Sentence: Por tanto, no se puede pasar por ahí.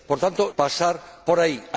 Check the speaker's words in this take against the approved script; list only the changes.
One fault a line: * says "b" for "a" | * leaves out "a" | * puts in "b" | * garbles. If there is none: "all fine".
* leaves out "no se puede"